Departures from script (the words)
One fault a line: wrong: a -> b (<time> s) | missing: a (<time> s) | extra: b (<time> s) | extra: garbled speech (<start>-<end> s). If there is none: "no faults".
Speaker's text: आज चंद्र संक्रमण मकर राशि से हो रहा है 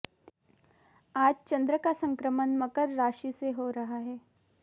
extra: का (1.8 s)